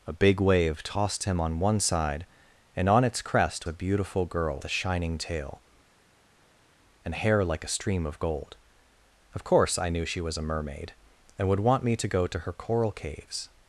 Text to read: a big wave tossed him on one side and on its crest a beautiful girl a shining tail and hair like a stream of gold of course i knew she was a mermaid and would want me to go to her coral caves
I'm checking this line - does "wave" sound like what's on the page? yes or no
yes